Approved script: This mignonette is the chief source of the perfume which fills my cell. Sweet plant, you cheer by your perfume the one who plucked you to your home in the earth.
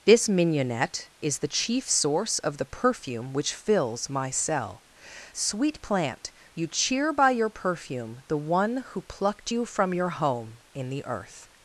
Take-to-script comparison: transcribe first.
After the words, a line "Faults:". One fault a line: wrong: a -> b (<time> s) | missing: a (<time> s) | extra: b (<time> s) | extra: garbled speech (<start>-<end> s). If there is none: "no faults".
This mignonette is the chief source of the perfume which fills my cell. Sweet plant, you cheer by your perfume the one who plucked you from your home in the earth.
Faults:
wrong: to -> from (9.6 s)